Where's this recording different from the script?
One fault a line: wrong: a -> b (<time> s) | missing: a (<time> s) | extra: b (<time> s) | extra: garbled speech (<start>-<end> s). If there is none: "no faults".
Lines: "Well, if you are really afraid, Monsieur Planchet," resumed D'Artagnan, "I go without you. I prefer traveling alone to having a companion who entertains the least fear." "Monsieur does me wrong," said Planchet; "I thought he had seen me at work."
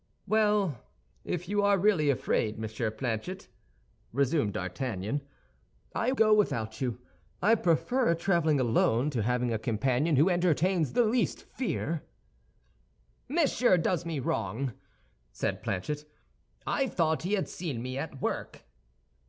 no faults